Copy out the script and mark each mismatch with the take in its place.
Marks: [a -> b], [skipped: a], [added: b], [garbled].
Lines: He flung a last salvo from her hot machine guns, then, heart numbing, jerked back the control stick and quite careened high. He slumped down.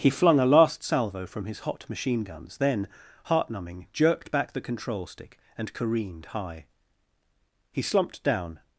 He flung a last salvo from [her -> his] hot machine guns, then, heart numbing, jerked back the control stick and [skipped: quite] careened high. He slumped down.